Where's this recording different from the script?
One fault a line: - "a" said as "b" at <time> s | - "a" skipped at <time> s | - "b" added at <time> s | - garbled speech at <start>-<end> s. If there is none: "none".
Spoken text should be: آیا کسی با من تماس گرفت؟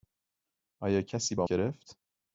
- "من تماس" skipped at 1.5 s